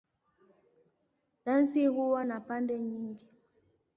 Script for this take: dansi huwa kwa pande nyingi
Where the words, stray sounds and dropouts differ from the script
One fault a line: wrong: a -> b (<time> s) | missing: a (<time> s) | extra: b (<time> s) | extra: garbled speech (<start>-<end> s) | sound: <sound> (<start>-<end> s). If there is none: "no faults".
wrong: kwa -> na (2.2 s)